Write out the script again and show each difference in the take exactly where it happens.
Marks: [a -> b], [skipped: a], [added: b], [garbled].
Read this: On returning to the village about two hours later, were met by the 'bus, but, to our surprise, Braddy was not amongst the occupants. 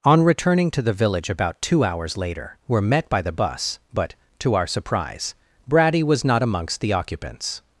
On returning to the village about two hours later, were met by the 'bus, but, to our surprise, Braddy was not amongst the occupants.